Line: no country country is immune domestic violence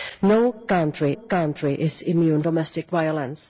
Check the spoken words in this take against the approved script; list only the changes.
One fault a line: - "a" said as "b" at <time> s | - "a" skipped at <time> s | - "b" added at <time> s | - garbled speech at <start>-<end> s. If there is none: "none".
none